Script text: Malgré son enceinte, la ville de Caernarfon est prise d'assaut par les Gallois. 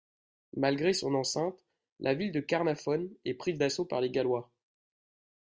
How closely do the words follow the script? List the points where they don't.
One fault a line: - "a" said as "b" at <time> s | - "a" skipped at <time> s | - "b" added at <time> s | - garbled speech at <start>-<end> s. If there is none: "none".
none